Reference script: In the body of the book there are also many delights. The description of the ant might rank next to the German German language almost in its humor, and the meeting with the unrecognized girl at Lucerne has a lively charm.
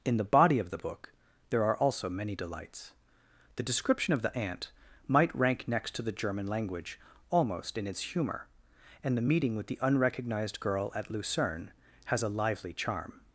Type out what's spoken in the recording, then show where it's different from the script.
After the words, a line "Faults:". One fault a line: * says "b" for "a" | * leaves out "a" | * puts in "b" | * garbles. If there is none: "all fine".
In the body of the book there are also many delights. The description of the ant might rank next to the German language almost in its humor, and the meeting with the unrecognized girl at Lucerne has a lively charm.
Faults:
* leaves out "German"